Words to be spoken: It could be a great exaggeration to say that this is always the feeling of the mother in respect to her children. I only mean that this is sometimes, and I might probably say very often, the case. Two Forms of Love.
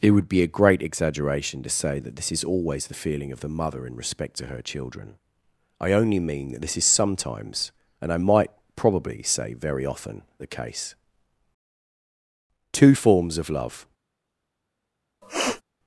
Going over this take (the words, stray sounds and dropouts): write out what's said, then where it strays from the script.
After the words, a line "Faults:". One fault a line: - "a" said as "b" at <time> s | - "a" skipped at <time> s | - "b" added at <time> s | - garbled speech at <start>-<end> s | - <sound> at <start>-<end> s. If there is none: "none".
It would be a great exaggeration to say that this is always the feeling of the mother in respect to her children. I only mean that this is sometimes, and I might probably say very often, the case. Two Forms of Love.
Faults:
- "could" said as "would" at 0.1 s
- sniff at 15.2-15.6 s